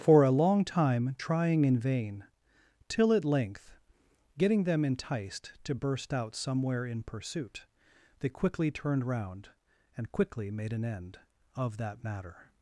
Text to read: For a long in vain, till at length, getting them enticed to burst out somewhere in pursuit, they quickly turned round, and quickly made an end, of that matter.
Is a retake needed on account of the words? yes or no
yes